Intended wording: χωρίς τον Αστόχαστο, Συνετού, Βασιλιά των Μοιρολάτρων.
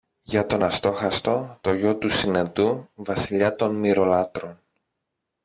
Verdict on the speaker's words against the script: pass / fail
fail